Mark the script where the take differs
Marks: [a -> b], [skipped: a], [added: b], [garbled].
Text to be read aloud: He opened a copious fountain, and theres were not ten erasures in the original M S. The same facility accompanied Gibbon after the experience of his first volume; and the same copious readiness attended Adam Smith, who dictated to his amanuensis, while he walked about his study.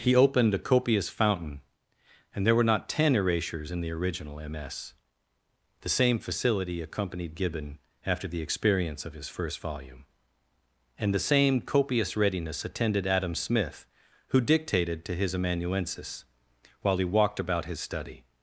He opened a copious fountain, and [theres -> there] were not ten erasures in the original M S. The same facility accompanied Gibbon after the experience of his first volume; and the same copious readiness attended Adam Smith, who dictated to his amanuensis, while he walked about his study.